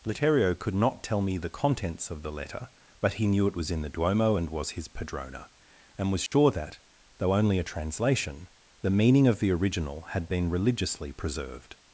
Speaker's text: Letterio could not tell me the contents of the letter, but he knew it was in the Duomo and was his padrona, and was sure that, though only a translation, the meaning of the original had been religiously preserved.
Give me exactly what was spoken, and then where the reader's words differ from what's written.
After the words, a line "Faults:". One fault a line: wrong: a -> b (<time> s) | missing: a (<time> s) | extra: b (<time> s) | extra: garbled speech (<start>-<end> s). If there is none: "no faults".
Letterio could not tell me the contents of the letter, but he knew it was in the Duomo and was his padrona, and was sure that, though only a translation, the meaning of the original had been religiously preserved.
Faults:
no faults